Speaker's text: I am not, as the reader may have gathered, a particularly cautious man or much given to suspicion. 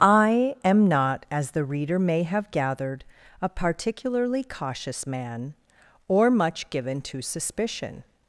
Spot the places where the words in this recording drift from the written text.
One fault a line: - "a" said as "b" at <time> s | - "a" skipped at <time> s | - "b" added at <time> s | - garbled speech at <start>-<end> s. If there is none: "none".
none